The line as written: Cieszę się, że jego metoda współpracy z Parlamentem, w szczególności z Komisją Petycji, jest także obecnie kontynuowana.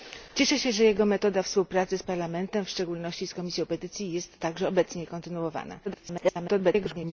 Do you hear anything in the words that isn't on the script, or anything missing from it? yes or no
yes